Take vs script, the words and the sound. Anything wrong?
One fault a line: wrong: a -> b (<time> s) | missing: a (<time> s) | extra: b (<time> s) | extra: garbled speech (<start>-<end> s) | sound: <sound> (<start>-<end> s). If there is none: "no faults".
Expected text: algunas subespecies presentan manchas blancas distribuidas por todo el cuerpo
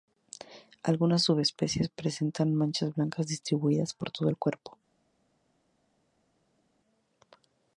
no faults